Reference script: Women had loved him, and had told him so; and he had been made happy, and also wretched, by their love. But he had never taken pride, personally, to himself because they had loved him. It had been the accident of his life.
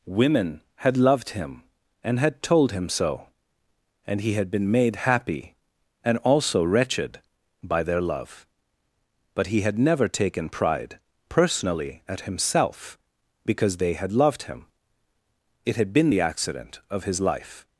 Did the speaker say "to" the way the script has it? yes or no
no